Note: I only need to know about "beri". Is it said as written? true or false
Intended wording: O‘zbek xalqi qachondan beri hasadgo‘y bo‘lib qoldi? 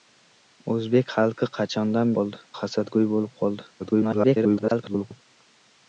false